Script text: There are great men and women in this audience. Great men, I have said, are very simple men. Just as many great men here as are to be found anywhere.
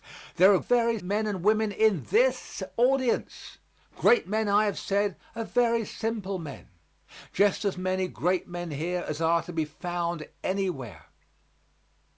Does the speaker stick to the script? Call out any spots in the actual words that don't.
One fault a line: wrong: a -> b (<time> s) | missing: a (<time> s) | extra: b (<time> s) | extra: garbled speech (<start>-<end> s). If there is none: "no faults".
wrong: great -> very (0.6 s)